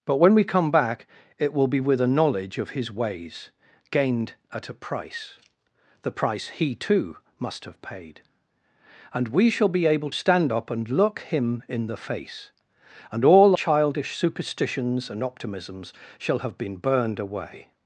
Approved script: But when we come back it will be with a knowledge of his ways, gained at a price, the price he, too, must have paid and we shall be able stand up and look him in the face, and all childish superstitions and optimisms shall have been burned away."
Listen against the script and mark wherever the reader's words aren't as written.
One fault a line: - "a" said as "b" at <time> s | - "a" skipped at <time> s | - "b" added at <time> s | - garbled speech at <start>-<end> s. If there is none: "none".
none